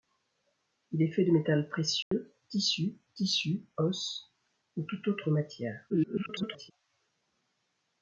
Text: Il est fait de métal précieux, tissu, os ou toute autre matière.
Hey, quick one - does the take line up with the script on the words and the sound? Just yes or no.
no